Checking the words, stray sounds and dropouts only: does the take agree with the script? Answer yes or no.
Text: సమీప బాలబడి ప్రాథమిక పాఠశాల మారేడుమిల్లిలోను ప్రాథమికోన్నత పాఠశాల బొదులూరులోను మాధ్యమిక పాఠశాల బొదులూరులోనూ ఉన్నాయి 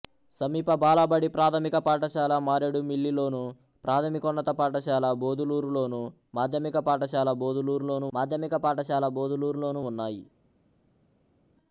no